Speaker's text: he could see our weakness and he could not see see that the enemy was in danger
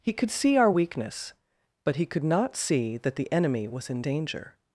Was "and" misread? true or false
true